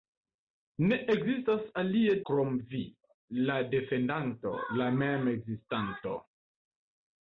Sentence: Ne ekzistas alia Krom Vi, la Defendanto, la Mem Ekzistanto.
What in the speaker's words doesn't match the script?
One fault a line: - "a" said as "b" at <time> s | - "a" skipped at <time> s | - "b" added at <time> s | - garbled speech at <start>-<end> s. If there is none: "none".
none